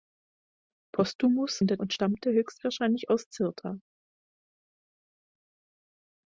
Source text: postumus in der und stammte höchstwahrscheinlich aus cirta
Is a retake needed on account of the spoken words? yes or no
no